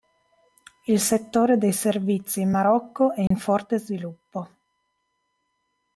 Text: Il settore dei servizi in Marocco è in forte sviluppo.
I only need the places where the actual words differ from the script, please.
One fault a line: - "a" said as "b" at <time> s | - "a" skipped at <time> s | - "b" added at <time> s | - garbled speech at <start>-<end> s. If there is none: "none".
none